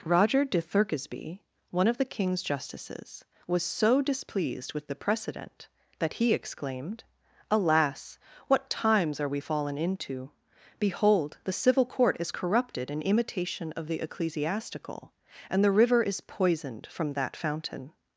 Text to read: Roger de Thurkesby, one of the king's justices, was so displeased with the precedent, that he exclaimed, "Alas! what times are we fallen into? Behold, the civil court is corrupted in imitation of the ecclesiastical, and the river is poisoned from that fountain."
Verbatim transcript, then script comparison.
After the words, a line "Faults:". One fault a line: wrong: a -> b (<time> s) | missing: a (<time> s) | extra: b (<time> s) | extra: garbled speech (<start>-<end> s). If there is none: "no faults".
Roger de Thurkesby, one of the king's justices, was so displeased with the precedent, that he exclaimed, "Alas! what times are we fallen into? Behold, the civil court is corrupted in imitation of the ecclesiastical, and the river is poisoned from that fountain."
Faults:
no faults